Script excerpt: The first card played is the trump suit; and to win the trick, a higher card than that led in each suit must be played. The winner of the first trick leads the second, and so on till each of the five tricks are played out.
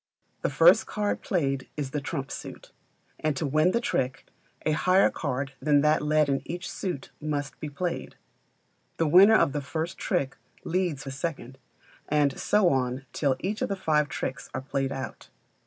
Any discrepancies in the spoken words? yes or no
no